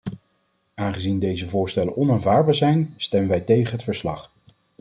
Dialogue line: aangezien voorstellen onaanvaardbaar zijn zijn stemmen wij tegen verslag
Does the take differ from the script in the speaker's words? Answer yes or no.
yes